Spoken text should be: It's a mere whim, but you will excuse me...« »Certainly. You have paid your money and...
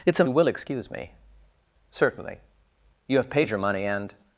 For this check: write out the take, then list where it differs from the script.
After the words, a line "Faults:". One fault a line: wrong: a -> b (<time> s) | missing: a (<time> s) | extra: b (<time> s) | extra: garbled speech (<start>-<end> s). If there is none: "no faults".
It's a you will excuse me...« »Certainly. You have paid your money and...
Faults:
missing: mere whim but (0.2 s)